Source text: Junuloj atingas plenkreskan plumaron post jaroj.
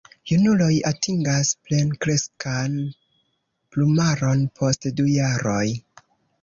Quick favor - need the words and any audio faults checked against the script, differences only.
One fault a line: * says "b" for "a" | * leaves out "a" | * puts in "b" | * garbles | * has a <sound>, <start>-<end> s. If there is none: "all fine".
* puts in "du"